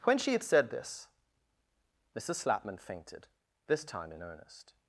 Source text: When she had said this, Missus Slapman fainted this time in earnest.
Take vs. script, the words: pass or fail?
pass